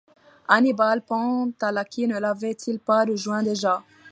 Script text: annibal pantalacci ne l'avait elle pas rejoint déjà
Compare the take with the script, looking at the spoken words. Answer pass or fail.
fail